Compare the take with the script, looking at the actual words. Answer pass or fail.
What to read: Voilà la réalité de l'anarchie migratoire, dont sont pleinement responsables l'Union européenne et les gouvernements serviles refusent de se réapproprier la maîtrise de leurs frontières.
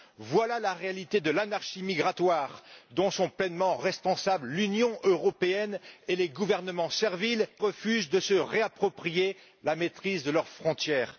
pass